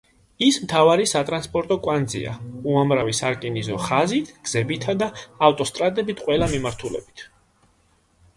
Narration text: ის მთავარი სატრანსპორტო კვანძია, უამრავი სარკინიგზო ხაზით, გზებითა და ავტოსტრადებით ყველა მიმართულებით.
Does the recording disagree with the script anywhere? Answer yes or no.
no